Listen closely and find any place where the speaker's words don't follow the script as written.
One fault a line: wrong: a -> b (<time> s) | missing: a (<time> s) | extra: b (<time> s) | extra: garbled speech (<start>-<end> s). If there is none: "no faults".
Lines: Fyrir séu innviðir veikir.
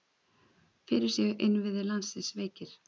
extra: landsins (1.9 s)